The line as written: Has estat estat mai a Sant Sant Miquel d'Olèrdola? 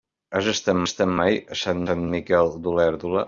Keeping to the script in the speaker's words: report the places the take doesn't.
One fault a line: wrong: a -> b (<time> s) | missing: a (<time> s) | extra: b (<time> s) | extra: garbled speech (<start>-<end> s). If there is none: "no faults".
no faults